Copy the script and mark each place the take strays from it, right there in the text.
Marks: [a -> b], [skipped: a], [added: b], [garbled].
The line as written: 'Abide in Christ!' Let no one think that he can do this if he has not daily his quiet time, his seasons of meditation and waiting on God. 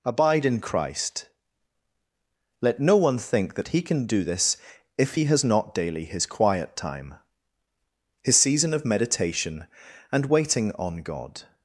'Abide in Christ!' Let no one think that he can do this if he has not daily his quiet time, his [seasons -> season] of meditation and waiting on God.